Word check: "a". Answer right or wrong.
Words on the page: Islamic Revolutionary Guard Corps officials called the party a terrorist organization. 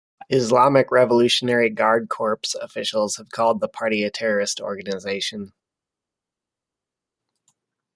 right